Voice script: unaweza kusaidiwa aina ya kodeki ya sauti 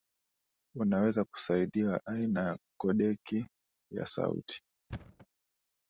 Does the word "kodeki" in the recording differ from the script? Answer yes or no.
no